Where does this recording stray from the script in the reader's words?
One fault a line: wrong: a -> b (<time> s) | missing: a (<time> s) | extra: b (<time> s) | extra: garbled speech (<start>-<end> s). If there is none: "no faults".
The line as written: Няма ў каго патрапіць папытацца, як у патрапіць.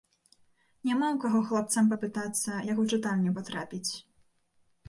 wrong: патрапіць -> хлапцам (1.5 s)
extra: чытальню (2.9 s)